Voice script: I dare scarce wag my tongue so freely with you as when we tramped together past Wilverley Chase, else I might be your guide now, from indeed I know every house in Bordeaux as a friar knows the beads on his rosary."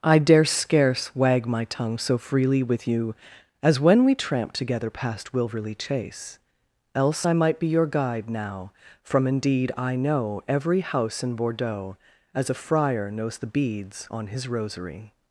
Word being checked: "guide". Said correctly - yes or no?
yes